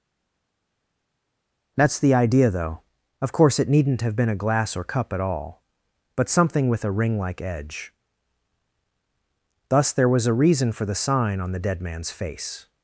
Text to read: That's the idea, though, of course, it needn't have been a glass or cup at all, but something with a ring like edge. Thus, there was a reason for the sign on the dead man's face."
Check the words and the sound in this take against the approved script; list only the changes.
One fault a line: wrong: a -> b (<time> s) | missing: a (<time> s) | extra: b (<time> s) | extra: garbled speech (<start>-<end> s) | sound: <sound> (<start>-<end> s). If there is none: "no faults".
no faults